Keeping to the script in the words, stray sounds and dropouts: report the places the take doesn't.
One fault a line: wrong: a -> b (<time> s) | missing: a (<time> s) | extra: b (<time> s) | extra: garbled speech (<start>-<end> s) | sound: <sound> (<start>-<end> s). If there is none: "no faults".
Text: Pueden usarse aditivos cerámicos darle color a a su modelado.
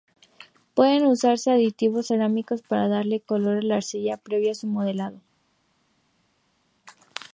extra: para (2.6 s)
extra: la arcilla previo (3.6 s)